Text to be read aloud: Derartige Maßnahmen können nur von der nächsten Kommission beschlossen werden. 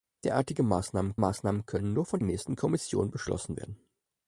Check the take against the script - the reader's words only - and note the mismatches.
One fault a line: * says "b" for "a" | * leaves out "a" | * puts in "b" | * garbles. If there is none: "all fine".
* puts in "Maßnahmen"
* leaves out "der"